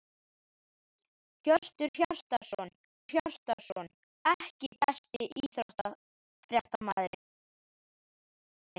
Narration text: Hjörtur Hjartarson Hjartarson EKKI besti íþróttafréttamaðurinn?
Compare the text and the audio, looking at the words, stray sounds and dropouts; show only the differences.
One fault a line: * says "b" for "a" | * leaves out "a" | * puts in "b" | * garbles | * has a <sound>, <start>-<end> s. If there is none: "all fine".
all fine